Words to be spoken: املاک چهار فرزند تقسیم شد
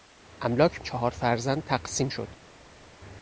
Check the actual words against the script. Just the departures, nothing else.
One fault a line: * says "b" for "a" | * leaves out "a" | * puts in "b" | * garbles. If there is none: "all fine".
all fine